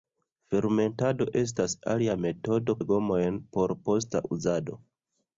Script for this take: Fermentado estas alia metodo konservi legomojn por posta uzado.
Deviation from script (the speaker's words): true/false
true